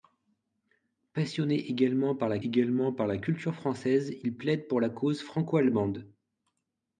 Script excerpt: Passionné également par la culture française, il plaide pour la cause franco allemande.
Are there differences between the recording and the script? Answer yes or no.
yes